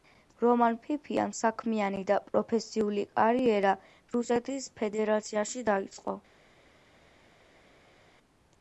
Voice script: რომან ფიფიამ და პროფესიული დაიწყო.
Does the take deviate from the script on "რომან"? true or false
false